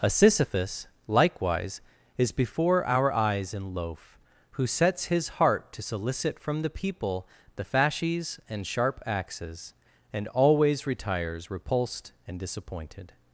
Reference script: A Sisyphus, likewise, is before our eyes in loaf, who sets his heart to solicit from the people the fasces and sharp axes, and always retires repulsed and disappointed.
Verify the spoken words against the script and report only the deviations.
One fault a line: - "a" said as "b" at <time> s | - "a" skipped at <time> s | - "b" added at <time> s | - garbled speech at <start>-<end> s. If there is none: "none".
none